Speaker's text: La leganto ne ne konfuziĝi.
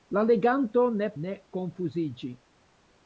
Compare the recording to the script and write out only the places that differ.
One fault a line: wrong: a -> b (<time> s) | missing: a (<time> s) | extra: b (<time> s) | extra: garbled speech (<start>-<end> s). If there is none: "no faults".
no faults